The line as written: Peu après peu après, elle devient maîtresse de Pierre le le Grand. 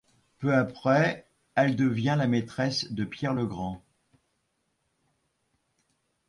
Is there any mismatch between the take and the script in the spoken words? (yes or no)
yes